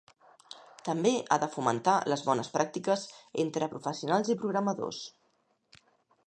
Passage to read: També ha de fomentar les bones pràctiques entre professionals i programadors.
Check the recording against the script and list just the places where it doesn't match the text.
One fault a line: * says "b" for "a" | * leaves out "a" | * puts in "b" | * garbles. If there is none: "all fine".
all fine